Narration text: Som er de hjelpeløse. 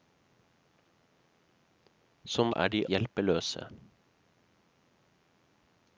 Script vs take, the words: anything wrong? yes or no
no